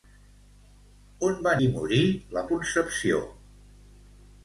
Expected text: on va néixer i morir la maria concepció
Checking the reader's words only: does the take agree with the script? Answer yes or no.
no